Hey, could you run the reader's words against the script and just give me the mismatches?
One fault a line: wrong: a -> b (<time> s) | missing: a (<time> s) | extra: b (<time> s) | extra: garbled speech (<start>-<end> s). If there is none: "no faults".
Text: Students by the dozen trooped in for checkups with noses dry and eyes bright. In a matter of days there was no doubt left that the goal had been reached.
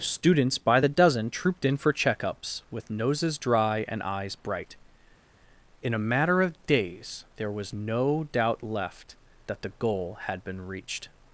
no faults